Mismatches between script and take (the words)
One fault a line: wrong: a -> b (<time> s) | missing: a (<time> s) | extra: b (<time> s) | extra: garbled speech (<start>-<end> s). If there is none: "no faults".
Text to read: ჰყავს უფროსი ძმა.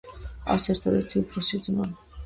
extra: ერთადერთი (0.8 s)